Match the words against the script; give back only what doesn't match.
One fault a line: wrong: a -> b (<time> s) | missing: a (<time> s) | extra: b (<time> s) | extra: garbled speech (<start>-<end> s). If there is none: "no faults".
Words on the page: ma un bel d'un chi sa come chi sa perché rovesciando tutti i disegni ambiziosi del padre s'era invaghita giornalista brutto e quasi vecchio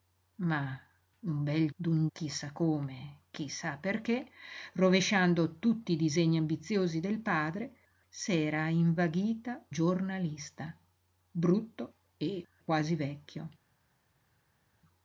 no faults